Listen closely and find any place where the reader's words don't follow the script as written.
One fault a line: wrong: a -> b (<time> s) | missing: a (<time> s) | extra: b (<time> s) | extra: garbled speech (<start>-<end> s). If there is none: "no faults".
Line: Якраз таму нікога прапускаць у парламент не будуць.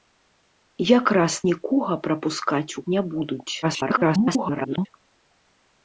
missing: таму (1.3 s)
missing: парламент (2.9 s)
extra: garbled speech (3.6-4.9 s)